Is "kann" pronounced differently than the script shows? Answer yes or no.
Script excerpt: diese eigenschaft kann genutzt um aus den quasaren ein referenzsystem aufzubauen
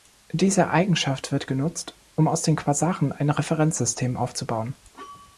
yes